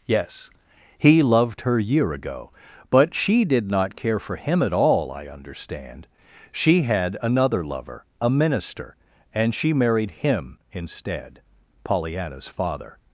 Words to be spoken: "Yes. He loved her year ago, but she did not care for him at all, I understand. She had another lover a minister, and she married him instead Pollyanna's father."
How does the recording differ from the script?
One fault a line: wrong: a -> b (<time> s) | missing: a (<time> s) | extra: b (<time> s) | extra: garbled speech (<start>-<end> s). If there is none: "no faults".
no faults